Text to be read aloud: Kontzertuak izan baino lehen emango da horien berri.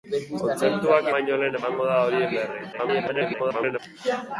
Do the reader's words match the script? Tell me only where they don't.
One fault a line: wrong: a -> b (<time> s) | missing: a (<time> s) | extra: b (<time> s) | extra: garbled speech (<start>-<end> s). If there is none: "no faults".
missing: izan (1.1 s)
extra: garbled speech (2.7-3.8 s)